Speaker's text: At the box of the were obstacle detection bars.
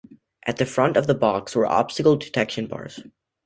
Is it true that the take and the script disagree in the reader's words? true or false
true